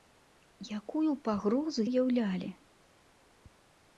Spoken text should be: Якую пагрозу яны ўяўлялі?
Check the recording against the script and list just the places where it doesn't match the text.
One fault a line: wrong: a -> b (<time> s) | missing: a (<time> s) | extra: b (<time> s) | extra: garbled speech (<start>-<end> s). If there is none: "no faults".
missing: яны (1.9 s)